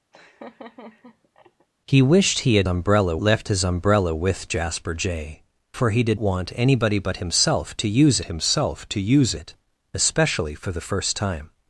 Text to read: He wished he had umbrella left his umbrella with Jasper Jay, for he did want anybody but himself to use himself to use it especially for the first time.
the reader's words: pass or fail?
pass